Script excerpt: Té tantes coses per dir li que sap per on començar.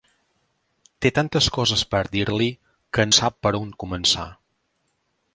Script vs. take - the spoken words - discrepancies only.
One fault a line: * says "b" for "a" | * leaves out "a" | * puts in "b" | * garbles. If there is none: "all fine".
all fine